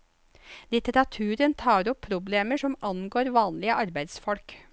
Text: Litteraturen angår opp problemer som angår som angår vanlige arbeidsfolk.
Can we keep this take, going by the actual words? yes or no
no